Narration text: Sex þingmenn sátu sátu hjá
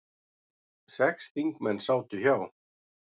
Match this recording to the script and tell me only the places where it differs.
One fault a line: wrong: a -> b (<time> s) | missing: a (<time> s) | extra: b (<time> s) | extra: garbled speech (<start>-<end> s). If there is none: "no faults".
missing: sátu (2.2 s)